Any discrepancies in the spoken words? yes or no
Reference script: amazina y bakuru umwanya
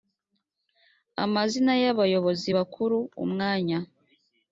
yes